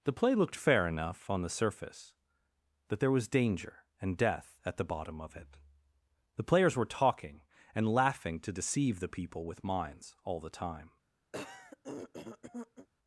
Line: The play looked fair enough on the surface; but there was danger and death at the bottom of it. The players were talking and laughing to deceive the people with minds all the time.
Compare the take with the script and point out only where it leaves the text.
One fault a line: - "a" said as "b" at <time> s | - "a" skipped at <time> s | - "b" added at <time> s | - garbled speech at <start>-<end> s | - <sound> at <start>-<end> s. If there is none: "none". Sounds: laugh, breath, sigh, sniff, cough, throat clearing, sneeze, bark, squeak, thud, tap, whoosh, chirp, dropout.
- throat clearing at 11.3-12.9 s